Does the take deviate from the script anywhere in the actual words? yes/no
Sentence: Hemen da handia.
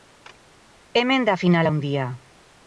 yes